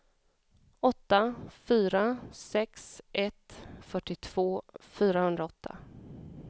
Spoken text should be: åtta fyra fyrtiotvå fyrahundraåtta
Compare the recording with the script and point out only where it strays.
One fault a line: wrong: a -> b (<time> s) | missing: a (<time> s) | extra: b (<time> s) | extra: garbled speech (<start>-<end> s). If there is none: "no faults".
extra: sex ett (2.3 s)